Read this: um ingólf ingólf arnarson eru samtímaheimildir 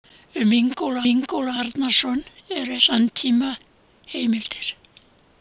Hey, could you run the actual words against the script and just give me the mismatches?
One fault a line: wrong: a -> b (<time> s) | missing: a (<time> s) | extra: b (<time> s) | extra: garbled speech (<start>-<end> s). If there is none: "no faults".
no faults